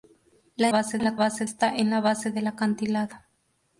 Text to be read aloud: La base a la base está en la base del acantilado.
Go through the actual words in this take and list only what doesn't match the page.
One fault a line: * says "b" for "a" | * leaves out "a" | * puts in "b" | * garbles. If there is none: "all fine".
all fine